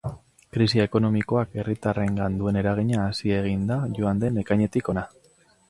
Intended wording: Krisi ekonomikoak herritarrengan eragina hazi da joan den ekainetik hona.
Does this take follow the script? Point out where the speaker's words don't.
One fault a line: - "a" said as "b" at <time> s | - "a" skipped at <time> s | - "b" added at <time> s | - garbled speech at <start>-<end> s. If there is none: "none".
- "duen" added at 2.4 s
- "egin" added at 3.4 s